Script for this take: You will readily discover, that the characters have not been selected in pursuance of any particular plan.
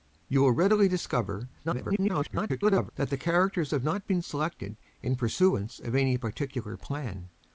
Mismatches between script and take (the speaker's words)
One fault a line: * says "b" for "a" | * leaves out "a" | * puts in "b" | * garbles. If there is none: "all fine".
* garbles